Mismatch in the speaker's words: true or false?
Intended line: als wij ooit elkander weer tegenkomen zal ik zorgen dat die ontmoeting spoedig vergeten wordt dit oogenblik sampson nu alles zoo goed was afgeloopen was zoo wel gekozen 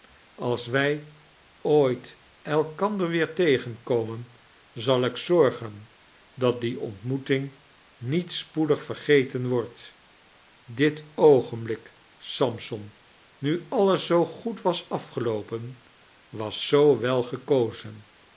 true